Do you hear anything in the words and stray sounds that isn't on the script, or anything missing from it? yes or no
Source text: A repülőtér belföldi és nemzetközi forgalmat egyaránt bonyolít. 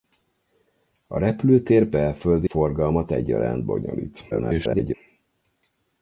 yes